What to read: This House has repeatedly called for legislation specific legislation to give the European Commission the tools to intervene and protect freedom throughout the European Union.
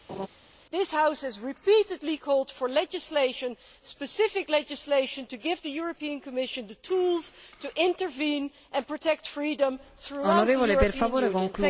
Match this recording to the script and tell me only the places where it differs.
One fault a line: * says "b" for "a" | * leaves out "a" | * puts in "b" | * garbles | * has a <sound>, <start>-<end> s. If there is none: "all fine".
* has a laugh, 0.1-0.3 s